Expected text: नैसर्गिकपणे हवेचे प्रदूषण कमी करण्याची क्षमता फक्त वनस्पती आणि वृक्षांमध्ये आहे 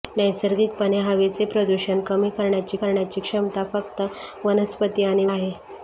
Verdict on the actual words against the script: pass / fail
fail